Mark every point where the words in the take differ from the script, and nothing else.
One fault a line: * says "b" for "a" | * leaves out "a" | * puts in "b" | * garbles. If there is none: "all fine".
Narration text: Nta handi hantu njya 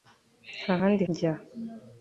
* leaves out "hantu"